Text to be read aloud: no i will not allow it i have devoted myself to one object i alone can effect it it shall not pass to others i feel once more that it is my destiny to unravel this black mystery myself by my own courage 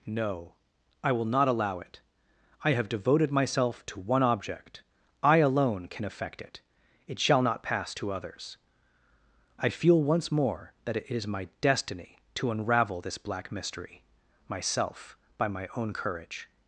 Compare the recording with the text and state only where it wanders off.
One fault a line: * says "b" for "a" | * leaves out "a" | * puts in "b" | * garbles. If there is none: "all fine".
all fine